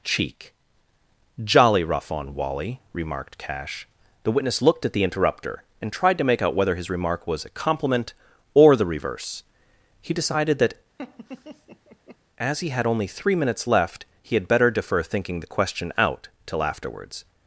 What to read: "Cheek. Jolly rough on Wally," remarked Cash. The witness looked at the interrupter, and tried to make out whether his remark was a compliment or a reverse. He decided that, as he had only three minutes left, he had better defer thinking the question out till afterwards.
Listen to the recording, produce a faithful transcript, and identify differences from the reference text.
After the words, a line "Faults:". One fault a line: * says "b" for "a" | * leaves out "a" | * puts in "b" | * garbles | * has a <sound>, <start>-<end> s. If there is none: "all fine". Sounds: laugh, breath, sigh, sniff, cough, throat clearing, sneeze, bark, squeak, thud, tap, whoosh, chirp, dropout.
"Cheek. Jolly rough on Wally," remarked Cash. The witness looked at the interrupter, and tried to make out whether his remark was a compliment or the reverse. He decided that, as he had only three minutes left, he had better defer thinking the question out till afterwards.
Faults:
* says "the" for "a"
* has a laugh, 11.0-12.2 s